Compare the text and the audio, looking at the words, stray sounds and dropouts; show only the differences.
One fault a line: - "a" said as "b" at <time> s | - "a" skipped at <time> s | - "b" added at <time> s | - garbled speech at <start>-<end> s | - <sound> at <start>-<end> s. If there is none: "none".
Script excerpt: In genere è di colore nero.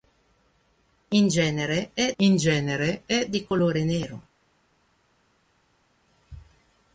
- "in genere è" added at 2.2 s